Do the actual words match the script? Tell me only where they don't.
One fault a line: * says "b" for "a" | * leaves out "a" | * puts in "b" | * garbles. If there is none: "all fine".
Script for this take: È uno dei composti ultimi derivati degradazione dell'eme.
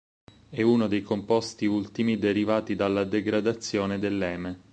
* puts in "dalla"